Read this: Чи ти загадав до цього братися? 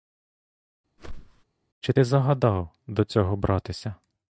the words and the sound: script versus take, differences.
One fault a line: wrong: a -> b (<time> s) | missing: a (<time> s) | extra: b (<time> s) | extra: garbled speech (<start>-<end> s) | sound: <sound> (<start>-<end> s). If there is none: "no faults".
sound: whoosh (1.0-1.4 s)